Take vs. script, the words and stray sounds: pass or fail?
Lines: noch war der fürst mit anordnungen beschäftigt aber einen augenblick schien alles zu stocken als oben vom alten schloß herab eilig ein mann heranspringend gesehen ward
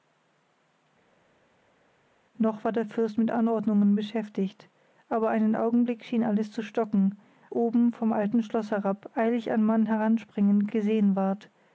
fail